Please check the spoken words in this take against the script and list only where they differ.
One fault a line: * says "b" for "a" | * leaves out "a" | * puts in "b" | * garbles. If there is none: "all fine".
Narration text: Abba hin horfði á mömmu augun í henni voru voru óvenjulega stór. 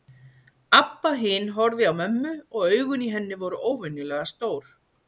* puts in "og"
* leaves out "voru"